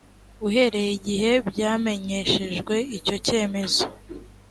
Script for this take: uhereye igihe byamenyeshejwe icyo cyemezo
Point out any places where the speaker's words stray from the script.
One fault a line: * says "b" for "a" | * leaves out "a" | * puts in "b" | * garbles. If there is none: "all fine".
all fine